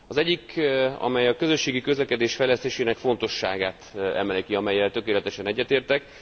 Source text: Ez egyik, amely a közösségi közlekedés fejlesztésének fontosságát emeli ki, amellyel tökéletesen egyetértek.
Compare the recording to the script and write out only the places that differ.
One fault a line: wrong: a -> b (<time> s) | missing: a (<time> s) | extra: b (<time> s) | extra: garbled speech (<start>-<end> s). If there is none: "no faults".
wrong: Ez -> Az (0.1 s)